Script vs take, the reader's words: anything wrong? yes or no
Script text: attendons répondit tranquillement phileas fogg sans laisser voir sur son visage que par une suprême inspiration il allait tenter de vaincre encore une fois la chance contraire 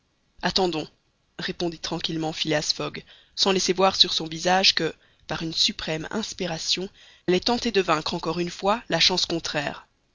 yes